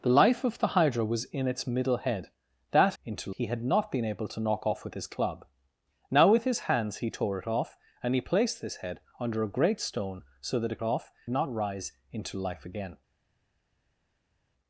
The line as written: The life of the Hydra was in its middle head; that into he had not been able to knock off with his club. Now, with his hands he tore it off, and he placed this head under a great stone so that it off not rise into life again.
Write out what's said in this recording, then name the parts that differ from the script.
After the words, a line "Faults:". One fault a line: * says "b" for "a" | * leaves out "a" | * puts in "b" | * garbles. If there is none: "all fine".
The life of the Hydra was in its middle head; that into he had not been able to knock off with his club. Now, with his hands he tore it off, and he placed this head under a great stone so that it off not rise into life again.
Faults:
all fine